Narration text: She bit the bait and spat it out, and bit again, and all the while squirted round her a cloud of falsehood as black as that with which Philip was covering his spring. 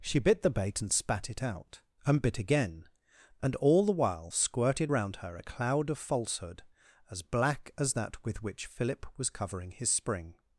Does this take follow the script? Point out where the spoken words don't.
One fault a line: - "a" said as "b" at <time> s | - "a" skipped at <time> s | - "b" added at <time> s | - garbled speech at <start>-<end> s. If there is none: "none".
none